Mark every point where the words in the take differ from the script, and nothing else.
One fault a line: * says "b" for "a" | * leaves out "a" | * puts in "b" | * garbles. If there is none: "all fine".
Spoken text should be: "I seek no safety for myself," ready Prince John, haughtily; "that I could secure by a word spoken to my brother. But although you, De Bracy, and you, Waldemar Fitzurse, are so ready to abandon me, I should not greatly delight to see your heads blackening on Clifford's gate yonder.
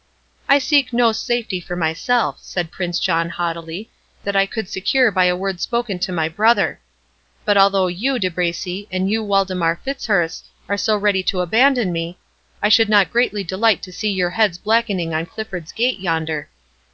* says "said" for "ready"